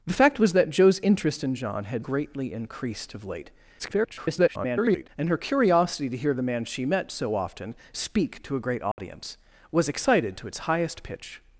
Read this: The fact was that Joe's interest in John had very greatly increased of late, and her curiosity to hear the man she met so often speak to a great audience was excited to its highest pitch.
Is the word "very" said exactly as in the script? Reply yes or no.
no